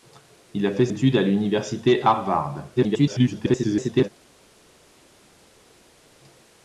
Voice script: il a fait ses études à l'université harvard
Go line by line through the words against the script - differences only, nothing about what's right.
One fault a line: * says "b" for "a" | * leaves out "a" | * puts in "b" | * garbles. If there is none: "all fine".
* leaves out "ses"
* garbles